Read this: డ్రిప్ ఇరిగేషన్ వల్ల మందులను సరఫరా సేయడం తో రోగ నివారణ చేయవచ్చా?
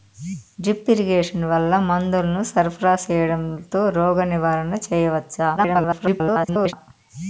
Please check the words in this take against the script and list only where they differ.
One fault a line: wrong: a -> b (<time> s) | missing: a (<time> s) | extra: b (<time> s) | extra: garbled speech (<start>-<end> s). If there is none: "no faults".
extra: garbled speech (5.6-6.7 s)